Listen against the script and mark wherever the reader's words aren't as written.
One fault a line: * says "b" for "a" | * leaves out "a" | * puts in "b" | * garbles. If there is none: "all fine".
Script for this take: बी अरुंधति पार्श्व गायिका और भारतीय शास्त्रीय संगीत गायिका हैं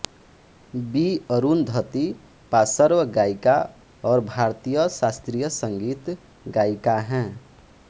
all fine